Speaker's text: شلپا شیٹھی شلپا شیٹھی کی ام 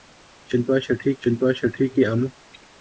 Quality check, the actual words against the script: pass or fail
pass